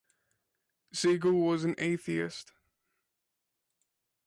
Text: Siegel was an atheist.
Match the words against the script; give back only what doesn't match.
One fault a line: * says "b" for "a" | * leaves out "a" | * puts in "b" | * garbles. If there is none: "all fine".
all fine